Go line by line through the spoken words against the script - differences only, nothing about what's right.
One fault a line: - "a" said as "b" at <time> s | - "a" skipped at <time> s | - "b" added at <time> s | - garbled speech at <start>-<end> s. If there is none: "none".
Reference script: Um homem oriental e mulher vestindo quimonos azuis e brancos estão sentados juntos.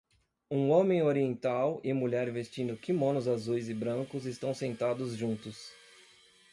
none